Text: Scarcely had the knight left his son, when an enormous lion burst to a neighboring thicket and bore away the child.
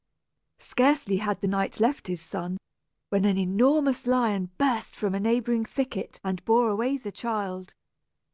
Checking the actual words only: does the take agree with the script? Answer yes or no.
no